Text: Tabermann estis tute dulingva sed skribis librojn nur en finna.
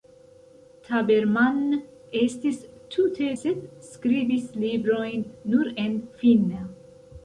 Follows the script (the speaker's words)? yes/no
no